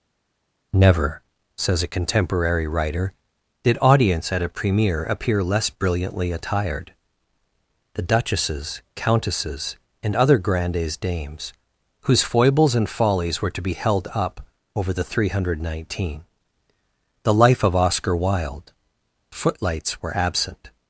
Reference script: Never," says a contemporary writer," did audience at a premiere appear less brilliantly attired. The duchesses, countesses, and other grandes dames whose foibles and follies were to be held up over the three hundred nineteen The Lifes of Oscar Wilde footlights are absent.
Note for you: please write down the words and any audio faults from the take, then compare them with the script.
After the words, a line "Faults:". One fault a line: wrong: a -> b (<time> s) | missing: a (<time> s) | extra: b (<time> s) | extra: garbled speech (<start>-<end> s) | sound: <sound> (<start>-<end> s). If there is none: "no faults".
Never," says a contemporary writer," did audience at a premiere appear less brilliantly attired. The duchesses, countesses, and other grandes dames whose foibles and follies were to be held up over the three hundred nineteen The Life of Oscar Wilde footlights were absent.
Faults:
wrong: Lifes -> Life (17.3 s)
wrong: are -> were (20.0 s)